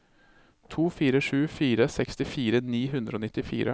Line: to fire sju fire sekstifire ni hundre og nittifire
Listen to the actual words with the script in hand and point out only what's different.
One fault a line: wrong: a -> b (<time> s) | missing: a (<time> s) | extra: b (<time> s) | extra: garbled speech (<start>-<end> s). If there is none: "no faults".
no faults